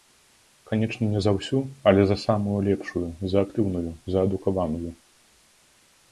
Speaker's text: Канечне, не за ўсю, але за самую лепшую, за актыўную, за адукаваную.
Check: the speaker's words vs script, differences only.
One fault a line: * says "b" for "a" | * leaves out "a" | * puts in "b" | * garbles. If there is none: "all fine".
all fine